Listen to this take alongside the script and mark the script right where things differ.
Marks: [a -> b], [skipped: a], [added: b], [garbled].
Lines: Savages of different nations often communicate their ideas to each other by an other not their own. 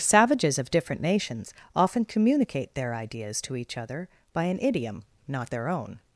Savages of different nations often communicate their ideas to each other by an [other -> idiom] not their own.